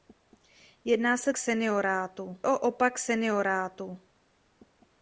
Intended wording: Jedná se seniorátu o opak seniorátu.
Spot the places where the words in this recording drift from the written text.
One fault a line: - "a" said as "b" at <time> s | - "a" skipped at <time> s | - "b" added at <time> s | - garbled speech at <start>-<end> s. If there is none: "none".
none